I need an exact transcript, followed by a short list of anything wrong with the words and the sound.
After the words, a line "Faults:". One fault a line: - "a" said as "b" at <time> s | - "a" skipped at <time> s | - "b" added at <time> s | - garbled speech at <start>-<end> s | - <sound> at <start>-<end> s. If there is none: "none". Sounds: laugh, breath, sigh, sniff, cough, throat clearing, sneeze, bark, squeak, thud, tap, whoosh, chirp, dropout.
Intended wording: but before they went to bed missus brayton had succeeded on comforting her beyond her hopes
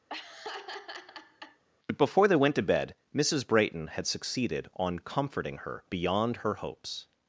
but before they went to bed missus brayton had succeeded on comforting her beyond her hopes
Faults:
- laugh at 0.1-1.6 s